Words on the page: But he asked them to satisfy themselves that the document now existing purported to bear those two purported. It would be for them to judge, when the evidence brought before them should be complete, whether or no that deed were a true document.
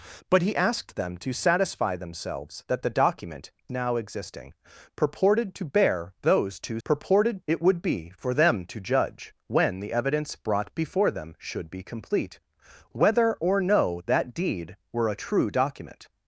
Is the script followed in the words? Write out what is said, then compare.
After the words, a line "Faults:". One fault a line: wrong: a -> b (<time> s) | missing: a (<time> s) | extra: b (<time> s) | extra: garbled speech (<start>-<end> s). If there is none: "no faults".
But he asked them to satisfy themselves that the document now existing purported to bear those two purported. It would be for them to judge, when the evidence brought before them should be complete, whether or no that deed were a true document.
Faults:
no faults